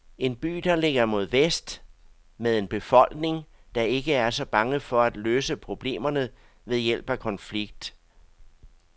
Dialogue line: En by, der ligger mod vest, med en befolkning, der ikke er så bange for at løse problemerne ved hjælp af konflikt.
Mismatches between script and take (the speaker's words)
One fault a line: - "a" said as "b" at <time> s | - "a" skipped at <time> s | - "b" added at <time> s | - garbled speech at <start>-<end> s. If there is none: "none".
none